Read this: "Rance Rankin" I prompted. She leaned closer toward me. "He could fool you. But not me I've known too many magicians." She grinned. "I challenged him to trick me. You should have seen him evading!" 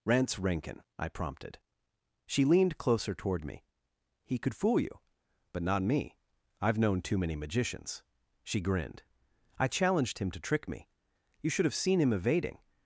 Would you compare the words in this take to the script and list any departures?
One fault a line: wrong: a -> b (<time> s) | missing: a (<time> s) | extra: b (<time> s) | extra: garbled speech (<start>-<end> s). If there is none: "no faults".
no faults